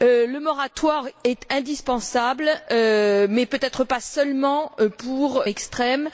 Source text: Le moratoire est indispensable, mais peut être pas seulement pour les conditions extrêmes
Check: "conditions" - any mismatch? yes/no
yes